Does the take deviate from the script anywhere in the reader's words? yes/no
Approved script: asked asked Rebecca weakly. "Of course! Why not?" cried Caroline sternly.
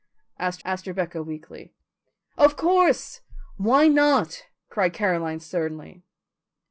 no